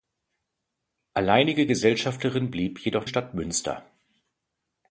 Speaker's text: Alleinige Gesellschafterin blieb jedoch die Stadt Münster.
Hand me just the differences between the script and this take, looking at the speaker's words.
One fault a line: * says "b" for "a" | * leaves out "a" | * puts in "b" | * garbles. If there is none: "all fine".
* leaves out "die"